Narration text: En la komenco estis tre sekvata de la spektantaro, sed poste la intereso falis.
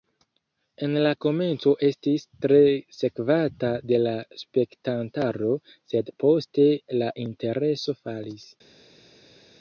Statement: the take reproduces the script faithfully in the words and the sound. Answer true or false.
true